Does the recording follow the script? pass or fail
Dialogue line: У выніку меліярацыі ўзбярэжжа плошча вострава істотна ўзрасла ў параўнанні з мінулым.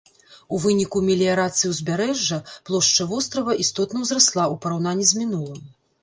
pass